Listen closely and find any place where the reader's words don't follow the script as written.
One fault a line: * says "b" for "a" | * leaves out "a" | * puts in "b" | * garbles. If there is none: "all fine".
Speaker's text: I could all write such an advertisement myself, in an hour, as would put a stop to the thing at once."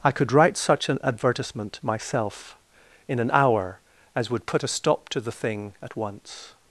* leaves out "all"